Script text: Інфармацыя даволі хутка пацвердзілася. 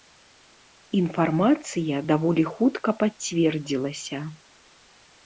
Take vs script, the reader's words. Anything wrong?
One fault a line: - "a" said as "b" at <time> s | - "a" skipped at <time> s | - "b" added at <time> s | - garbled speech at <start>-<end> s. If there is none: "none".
none